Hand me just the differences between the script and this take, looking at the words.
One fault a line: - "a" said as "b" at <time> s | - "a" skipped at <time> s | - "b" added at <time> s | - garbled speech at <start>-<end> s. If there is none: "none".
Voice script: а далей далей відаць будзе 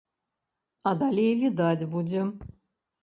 - "далей" skipped at 1.3 s